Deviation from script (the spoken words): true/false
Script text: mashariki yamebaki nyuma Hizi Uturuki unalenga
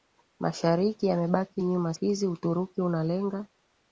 false